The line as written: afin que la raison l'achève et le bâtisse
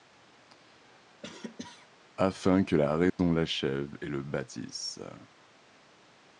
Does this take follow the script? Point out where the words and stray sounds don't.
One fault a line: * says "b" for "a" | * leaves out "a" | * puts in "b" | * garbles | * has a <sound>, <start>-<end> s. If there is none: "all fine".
* has a cough, 1.2-1.9 s
* has a dropout, 3.1-3.2 s